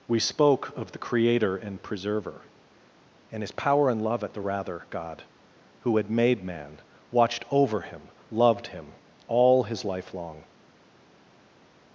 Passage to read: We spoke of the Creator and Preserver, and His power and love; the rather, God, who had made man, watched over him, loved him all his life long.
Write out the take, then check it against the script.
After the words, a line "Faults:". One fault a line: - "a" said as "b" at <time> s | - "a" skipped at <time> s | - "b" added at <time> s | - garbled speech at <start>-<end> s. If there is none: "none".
We spoke of the Creator and Preserver, and His power and love; at the rather, God, who had made man, watched over him, loved him all his life long.
Faults:
- "at" added at 4.2 s